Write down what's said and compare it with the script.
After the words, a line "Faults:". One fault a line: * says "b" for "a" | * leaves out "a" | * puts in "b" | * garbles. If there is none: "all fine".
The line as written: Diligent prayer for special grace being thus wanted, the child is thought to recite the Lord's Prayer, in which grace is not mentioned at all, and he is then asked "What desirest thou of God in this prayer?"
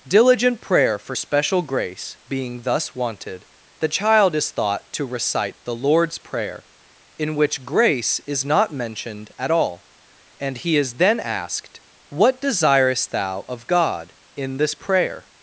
Diligent prayer for special grace being thus wanted, the child is thought to recite the Lord's Prayer, in which grace is not mentioned at all, and he is then asked "What desirest thou of God in this prayer?"
Faults:
all fine